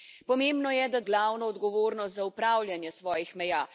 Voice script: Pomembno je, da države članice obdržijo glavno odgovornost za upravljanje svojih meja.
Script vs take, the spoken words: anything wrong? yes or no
yes